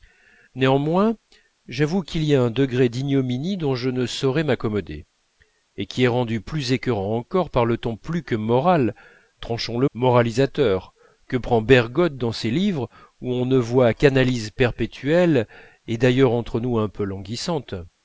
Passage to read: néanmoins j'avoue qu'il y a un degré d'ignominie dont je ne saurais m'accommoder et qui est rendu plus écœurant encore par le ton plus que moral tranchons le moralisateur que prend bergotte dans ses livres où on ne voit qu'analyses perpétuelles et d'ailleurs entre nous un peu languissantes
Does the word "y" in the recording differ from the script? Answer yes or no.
no